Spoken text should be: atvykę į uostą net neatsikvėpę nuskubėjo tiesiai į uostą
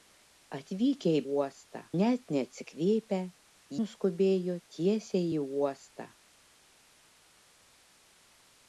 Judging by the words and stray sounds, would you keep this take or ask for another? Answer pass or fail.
pass